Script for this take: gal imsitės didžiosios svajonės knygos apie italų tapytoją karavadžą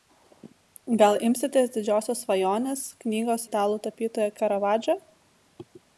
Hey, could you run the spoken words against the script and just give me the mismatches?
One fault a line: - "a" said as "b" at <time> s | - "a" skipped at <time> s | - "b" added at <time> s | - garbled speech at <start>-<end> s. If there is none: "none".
- "apie" skipped at 3.5 s